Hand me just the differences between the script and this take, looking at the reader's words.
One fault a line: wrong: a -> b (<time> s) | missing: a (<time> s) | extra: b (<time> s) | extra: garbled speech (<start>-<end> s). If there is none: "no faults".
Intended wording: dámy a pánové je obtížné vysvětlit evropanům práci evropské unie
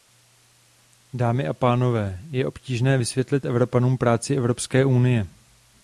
no faults